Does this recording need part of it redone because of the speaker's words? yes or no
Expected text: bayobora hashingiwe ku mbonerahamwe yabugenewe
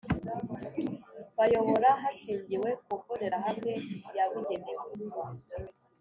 no